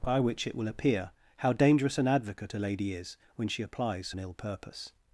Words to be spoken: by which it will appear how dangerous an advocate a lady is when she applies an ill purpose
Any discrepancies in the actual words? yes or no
no